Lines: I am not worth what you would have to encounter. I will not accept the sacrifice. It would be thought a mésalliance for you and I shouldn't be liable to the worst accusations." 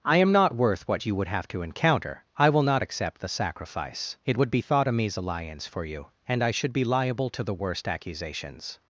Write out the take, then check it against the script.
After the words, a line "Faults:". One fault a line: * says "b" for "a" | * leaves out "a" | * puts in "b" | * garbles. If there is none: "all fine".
I am not worth what you would have to encounter. I will not accept the sacrifice. It would be thought a mésalliance for you and I should be liable to the worst accusations."
Faults:
* says "should" for "shouldn't"